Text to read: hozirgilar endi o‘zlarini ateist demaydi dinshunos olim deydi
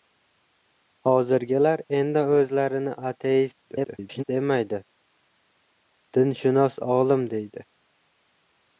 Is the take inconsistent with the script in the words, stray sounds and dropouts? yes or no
yes